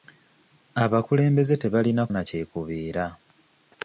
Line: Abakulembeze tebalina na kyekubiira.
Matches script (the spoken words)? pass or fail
pass